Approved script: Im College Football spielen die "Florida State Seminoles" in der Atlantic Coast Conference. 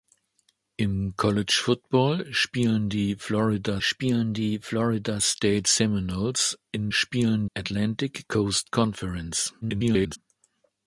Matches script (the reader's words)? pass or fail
fail